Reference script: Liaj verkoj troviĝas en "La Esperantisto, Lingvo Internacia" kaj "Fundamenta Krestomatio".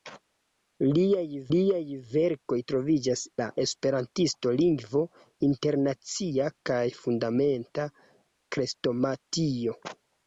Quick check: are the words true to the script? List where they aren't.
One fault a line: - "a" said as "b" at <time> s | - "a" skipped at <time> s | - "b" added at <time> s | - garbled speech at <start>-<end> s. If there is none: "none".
- "liaj" added at 1.5 s
- "en" skipped at 3.3 s